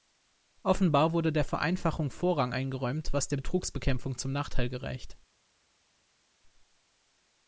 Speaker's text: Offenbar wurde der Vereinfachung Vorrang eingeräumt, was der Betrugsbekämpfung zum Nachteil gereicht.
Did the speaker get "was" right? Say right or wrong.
right